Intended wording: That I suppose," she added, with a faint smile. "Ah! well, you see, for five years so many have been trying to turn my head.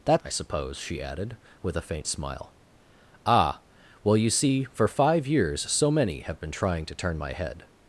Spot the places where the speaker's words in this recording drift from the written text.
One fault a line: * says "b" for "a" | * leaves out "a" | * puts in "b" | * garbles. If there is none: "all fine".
all fine